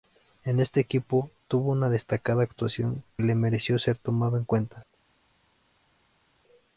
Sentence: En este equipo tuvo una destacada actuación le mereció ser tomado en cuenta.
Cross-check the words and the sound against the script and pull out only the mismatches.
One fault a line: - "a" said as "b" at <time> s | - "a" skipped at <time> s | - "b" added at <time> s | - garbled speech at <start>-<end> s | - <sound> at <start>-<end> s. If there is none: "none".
none